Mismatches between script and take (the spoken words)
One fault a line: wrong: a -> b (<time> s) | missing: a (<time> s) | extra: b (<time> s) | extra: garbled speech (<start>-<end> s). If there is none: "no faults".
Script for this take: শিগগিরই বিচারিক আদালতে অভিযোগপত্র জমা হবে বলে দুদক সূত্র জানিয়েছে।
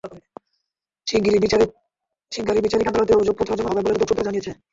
no faults